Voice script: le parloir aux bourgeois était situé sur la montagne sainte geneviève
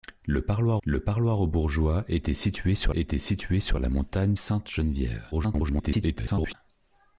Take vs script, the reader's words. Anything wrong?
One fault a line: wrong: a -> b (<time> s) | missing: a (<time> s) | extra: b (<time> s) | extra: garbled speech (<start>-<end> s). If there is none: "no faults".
extra: le parloir (0.8 s)
extra: était situé sur (2.9 s)
extra: garbled speech (5.3-6.5 s)